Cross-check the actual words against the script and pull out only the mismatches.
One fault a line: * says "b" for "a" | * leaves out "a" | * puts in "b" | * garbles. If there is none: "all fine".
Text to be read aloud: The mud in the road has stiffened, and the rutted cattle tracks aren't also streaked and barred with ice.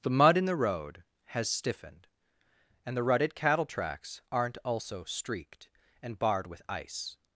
all fine